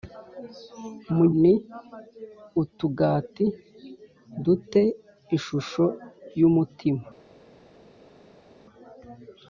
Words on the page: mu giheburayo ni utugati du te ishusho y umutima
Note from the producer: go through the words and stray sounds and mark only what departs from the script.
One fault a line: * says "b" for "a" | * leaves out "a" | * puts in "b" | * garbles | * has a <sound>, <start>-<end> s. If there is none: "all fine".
* leaves out "giheburayo"